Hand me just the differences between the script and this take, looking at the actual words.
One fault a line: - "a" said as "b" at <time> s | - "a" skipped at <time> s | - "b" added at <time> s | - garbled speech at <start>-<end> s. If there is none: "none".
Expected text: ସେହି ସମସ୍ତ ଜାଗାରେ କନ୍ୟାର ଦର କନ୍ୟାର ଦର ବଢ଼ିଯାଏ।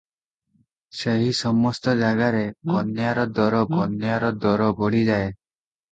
none